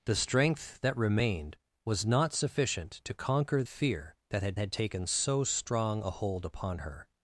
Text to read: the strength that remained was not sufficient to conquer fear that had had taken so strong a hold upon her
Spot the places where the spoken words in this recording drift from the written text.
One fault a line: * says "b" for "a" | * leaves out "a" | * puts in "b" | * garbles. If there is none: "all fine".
all fine